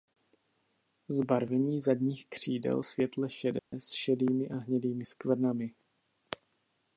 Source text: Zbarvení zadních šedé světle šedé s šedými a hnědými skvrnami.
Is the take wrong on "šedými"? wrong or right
right